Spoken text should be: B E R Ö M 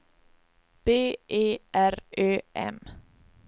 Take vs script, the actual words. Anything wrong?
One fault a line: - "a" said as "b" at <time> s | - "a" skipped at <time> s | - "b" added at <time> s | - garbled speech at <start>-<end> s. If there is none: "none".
none